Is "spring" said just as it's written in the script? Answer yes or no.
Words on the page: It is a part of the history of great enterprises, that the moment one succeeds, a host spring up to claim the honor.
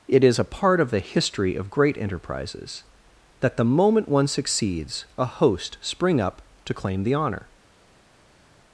yes